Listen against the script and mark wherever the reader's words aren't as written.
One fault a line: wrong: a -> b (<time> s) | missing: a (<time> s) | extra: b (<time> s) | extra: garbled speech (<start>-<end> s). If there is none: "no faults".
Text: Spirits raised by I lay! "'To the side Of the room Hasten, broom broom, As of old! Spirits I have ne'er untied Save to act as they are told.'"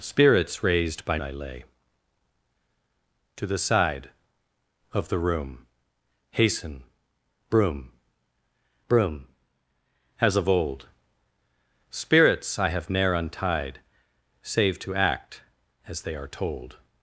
no faults